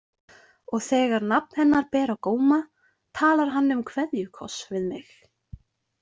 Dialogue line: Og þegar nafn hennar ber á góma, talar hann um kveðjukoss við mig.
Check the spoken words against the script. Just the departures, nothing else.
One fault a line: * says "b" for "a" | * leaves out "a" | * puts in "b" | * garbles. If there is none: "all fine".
all fine